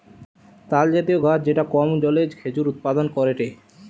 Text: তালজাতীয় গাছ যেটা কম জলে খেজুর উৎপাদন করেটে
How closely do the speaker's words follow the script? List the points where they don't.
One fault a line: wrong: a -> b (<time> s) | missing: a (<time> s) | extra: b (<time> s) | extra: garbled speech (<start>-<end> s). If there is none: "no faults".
no faults